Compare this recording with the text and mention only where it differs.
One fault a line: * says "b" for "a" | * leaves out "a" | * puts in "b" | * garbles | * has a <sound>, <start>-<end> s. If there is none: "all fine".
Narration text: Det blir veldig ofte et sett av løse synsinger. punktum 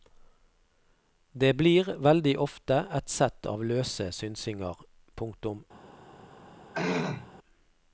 * has a throat clearing, 6.7-7.3 s